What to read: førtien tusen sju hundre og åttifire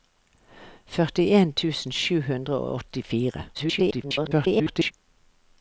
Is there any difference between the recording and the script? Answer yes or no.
yes